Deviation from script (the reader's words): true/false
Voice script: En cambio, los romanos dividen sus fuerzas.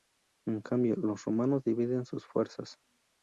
false